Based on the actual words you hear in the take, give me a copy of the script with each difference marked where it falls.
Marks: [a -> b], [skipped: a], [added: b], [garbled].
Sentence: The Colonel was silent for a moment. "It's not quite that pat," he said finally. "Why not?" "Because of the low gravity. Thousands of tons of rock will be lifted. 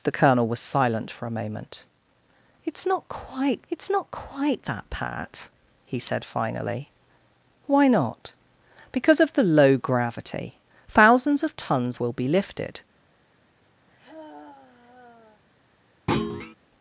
The Colonel was silent for a moment. "It's not quite [added: it's not quite] that pat," he said finally. "Why not?" "Because of the low gravity. Thousands of tons [skipped: of rock] will be lifted.